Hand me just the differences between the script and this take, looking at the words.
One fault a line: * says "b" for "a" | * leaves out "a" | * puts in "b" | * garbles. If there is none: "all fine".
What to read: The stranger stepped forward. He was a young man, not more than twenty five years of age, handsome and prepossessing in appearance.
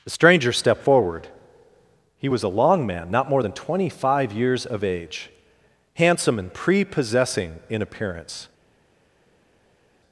* says "long" for "young"